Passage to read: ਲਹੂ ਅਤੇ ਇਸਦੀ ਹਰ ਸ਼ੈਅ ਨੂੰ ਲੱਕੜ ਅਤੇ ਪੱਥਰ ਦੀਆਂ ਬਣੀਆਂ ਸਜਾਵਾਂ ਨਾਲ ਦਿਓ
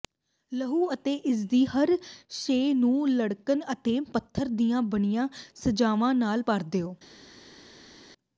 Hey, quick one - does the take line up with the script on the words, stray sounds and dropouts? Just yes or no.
no